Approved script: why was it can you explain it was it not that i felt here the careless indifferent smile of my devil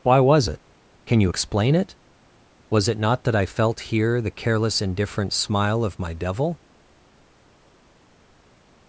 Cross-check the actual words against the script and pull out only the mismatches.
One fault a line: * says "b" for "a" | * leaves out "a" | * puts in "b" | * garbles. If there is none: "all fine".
all fine